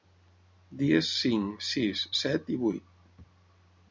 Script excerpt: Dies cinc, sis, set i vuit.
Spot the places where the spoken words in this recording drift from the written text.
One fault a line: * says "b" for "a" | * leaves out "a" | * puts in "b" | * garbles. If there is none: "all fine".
all fine